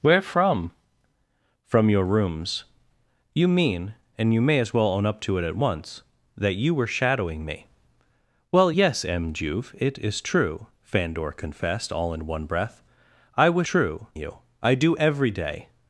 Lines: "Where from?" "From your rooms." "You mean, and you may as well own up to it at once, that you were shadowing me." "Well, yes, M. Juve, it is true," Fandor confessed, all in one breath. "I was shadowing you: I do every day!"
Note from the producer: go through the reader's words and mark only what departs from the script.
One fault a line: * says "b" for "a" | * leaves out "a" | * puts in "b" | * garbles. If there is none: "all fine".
* says "true" for "shadowing"